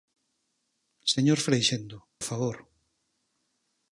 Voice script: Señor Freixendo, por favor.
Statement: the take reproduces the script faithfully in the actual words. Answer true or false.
false